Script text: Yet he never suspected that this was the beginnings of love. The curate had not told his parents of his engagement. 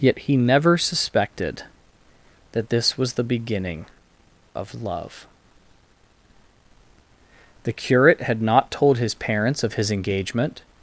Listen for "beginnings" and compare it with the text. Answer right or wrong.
wrong